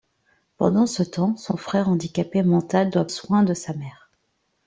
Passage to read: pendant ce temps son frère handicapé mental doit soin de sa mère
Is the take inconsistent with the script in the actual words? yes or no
no